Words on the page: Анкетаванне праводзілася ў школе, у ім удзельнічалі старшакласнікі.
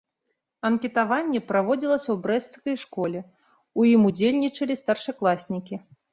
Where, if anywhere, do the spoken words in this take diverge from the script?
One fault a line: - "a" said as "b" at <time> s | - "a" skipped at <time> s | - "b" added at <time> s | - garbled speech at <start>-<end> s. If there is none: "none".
- "брэсцкай" added at 2.2 s